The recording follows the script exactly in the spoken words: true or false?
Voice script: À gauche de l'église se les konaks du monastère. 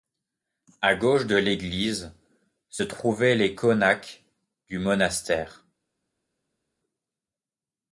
false